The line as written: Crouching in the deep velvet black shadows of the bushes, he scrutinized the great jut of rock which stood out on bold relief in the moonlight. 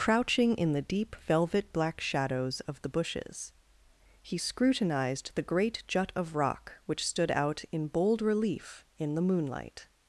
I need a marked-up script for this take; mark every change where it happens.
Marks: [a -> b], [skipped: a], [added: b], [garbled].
Crouching in the deep velvet black shadows of the bushes, he scrutinized the great jut of rock which stood out [on -> in] bold relief in the moonlight.